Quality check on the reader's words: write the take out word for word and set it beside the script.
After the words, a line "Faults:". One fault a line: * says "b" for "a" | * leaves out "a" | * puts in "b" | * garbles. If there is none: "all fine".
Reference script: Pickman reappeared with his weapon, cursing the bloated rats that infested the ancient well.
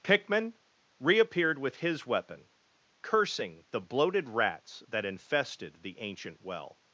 Pickman reappeared with his weapon, cursing the bloated rats that infested the ancient well.
Faults:
all fine